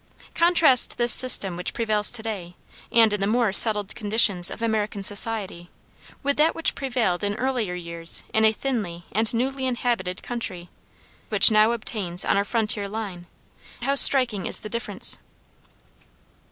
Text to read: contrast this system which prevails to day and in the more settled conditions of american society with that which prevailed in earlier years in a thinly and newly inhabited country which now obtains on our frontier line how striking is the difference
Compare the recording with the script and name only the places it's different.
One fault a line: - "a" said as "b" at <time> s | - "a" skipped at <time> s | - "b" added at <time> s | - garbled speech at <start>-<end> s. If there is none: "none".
none